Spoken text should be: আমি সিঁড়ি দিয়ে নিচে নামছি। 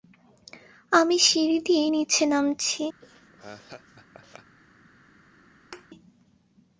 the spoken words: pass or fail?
pass